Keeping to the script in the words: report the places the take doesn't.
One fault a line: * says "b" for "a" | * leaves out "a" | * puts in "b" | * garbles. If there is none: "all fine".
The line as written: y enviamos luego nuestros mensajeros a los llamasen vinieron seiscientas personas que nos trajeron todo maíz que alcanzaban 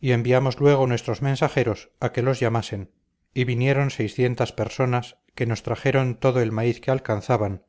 * puts in "que"
* puts in "y"
* puts in "el"